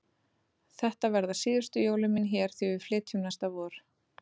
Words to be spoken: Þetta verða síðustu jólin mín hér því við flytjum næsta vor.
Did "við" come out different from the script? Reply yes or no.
no